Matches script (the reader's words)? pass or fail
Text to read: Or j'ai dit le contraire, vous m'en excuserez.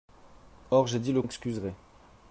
fail